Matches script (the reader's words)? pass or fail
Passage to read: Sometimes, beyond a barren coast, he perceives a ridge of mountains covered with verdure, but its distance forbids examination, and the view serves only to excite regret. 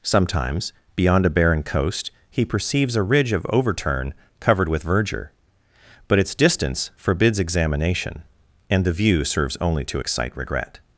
fail